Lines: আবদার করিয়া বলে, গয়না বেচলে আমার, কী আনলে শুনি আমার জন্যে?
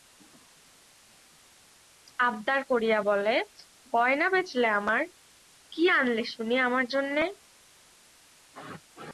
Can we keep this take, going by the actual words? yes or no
yes